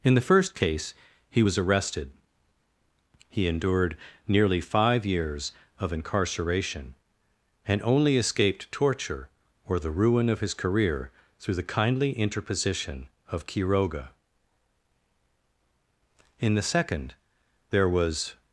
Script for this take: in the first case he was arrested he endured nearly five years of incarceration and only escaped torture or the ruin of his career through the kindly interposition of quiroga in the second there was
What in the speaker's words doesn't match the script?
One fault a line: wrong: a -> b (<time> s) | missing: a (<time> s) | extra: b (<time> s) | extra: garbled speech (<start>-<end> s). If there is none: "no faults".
no faults